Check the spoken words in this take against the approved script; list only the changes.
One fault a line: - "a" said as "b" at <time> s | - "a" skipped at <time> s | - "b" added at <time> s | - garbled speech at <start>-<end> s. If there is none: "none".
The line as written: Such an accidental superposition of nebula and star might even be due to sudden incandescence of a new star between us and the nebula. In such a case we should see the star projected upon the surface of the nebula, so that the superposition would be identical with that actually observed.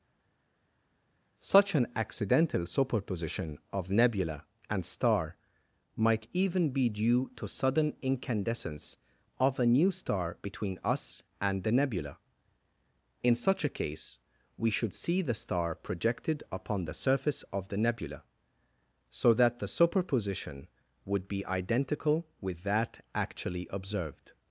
none